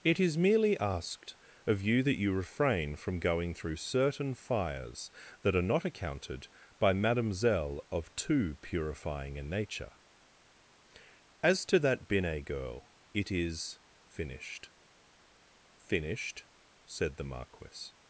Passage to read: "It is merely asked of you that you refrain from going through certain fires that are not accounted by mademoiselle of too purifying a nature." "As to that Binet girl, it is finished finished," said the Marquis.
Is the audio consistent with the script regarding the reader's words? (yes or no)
yes